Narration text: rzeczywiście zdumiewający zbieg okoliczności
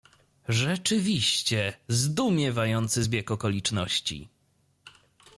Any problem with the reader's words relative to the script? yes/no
no